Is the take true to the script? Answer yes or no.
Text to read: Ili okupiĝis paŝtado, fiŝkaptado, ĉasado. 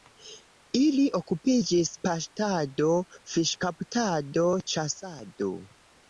yes